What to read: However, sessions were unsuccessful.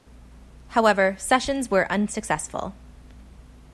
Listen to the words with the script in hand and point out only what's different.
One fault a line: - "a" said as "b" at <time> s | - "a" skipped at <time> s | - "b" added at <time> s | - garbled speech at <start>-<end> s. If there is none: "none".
none